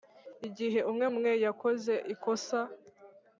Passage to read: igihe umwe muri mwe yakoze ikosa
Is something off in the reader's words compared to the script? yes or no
yes